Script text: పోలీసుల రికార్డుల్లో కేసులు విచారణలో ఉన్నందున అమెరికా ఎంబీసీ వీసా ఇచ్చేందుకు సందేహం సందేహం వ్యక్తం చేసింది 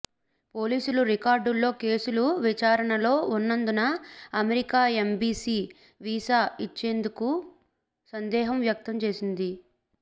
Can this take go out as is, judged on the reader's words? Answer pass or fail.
fail